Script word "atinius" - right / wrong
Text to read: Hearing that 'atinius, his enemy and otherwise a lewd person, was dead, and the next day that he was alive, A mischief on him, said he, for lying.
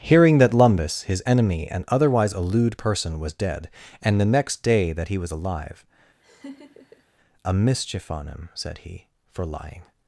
wrong